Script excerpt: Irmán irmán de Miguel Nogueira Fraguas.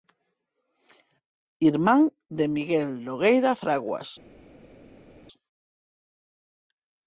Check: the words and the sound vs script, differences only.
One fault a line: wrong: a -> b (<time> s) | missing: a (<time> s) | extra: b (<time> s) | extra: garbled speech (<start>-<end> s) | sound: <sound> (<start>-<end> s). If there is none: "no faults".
missing: irmán (2.0 s)